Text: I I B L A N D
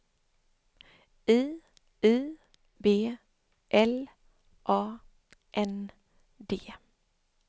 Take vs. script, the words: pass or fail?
pass